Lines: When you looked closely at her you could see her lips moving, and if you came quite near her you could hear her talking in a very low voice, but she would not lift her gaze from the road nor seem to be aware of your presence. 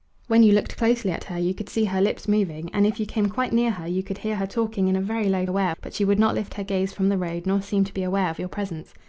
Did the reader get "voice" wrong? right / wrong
wrong